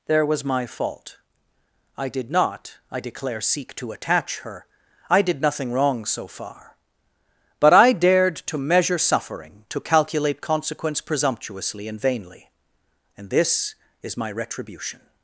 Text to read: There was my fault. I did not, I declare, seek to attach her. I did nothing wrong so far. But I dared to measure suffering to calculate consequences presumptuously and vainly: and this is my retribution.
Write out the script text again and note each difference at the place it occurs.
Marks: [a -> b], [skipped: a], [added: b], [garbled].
There was my fault. I did not, I declare, seek to attach her. I did nothing wrong so far. But I dared to measure suffering to calculate [consequences -> consequence] presumptuously and vainly: and this is my retribution.